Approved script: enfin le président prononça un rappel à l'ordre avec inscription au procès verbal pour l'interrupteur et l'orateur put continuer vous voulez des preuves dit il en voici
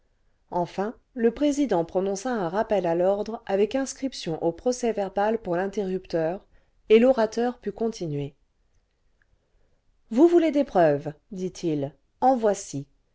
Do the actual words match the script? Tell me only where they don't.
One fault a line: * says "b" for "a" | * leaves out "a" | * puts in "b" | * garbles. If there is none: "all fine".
all fine